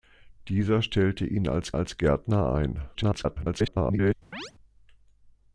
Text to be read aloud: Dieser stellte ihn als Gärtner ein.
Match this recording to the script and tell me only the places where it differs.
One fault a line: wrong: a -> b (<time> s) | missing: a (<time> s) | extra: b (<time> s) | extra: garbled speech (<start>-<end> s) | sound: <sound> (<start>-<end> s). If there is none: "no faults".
extra: als (1.7 s)
extra: garbled speech (2.9-4.1 s)
sound: chirp (4.3-4.5 s)